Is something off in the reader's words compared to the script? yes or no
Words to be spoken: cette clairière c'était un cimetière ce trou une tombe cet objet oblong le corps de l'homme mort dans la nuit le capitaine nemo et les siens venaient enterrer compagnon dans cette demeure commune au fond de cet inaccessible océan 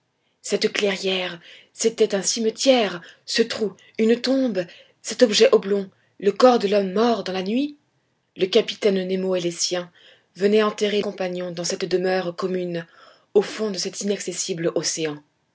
no